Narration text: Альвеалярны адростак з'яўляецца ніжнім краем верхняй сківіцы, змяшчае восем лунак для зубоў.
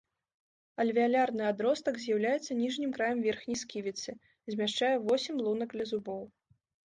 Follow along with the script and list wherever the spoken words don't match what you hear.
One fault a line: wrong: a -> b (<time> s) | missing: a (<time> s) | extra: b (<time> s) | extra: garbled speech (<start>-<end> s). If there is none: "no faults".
no faults